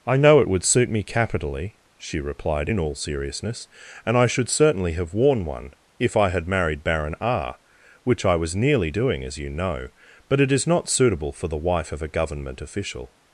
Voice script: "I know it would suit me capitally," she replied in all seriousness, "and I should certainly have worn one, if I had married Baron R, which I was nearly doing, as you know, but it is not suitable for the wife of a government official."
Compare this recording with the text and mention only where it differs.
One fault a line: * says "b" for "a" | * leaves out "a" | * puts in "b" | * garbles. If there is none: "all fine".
all fine